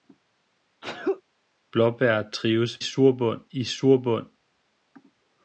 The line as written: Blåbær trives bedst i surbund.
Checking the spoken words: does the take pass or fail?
fail